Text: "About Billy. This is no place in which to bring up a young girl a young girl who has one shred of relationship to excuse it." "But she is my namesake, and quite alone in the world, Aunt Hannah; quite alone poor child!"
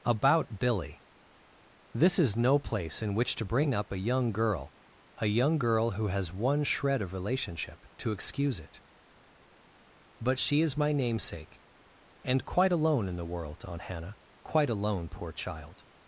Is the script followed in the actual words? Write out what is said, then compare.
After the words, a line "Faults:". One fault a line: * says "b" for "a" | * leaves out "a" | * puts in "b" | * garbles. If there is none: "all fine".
"About Billy. This is no place in which to bring up a young girl a young girl who has one shred of relationship to excuse it." "But she is my namesake, and quite alone in the world, Aunt Hannah; quite alone poor child!"
Faults:
all fine